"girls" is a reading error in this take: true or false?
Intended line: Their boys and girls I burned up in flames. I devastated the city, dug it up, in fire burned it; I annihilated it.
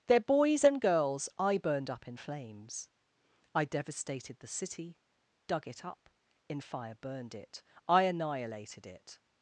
false